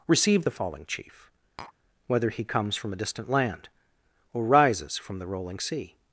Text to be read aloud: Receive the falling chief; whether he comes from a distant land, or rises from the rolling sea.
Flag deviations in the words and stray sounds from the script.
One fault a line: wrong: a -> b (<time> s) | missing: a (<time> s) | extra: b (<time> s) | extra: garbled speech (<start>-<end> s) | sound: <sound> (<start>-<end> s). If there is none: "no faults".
sound: tap (1.6-1.7 s)